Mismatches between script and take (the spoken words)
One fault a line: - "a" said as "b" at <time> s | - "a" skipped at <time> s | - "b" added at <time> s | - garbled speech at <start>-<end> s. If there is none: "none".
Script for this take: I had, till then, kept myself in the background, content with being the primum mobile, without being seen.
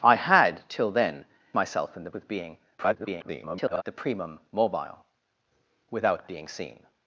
- "kept" skipped at 1.2 s
- "background content" skipped at 2.1 s
- garbled speech at 2.8-3.8 s